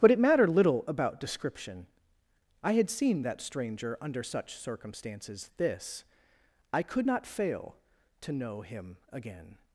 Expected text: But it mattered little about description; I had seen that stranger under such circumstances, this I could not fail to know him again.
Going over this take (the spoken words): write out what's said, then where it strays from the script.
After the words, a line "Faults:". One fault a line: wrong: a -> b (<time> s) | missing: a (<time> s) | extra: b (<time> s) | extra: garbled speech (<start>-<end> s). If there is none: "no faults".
But it mattered little about description; I had seen that stranger under such circumstances, this I could not fail to know him again.
Faults:
no faults